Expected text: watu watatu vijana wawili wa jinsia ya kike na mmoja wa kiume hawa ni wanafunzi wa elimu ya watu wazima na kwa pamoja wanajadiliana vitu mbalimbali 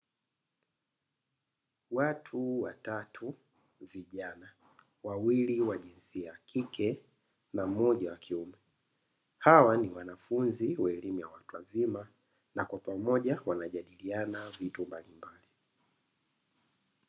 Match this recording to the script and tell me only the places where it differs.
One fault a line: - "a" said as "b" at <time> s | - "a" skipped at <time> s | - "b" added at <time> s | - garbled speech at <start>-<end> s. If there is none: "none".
none